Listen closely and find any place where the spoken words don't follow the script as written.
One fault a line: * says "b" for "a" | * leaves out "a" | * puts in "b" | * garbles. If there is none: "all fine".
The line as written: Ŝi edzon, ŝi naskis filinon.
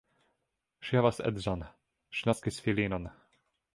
* puts in "havas"